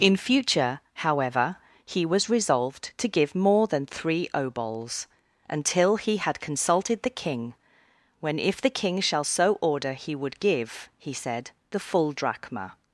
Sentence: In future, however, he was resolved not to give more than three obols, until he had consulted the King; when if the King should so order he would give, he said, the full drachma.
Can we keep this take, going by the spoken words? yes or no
no